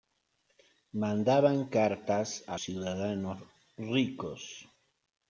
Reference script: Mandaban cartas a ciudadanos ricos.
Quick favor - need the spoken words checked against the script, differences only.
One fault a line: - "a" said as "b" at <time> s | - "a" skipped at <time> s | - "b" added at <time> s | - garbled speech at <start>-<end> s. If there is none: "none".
none